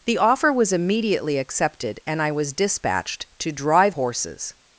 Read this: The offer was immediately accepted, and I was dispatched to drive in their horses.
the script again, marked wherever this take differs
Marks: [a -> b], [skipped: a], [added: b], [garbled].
The offer was immediately accepted, and I was dispatched to drive [skipped: in their] horses.